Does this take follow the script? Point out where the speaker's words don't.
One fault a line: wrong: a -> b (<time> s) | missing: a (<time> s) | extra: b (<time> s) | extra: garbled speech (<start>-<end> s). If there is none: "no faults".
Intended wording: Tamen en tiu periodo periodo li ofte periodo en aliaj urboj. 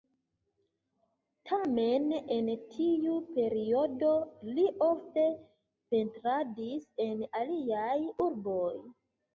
missing: periodo (4.1 s)
wrong: periodo -> pentradis (5.9 s)